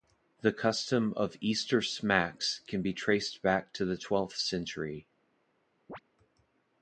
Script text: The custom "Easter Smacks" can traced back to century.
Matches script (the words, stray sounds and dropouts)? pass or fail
fail